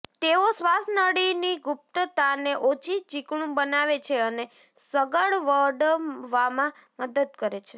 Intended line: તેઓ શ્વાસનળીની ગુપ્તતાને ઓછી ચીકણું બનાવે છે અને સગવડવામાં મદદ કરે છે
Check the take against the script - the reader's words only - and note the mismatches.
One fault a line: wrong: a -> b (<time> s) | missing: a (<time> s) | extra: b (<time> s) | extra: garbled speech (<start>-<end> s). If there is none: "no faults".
no faults